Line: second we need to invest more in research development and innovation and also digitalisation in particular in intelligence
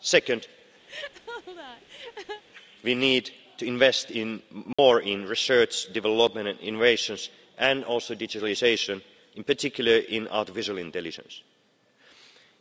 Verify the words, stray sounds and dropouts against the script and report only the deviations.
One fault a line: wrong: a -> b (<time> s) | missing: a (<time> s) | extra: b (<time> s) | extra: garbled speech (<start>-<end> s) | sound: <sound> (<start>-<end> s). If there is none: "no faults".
sound: laugh (0.9-2.4 s)
sound: dropout (4.7-4.8 s)
extra: artificial (10.3 s)